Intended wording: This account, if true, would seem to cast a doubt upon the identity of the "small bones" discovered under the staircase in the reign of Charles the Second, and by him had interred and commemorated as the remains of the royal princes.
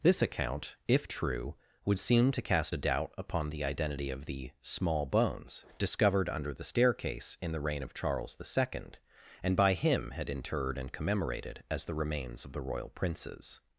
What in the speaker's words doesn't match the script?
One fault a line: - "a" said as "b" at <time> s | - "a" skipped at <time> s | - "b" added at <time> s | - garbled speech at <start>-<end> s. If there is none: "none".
none